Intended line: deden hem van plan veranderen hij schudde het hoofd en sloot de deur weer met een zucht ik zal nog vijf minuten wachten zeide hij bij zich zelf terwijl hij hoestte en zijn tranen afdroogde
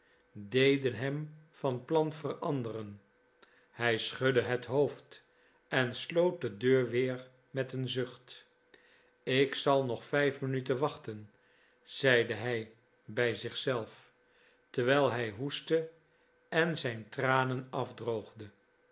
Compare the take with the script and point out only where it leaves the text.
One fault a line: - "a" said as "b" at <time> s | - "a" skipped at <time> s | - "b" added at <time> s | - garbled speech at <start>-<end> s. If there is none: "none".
none